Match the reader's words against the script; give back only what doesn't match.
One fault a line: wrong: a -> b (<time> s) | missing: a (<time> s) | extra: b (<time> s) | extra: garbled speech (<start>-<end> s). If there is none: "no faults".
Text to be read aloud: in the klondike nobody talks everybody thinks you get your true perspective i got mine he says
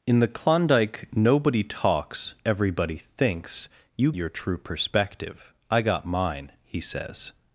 missing: get (4.1 s)